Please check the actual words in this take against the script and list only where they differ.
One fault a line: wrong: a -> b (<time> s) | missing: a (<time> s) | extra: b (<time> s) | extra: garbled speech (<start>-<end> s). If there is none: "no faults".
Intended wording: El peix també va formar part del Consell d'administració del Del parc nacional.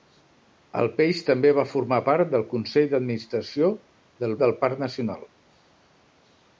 no faults